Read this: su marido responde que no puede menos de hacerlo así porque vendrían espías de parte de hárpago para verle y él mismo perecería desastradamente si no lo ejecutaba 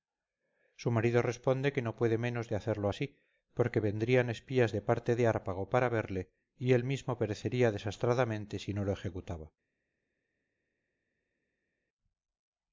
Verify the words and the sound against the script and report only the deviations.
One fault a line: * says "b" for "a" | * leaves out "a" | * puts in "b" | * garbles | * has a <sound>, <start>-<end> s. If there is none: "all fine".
all fine